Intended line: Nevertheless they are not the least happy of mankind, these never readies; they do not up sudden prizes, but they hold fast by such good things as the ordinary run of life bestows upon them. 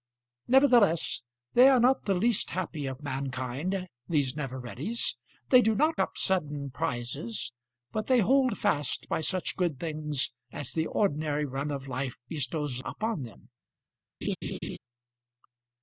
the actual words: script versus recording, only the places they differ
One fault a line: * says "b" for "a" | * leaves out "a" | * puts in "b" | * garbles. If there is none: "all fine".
all fine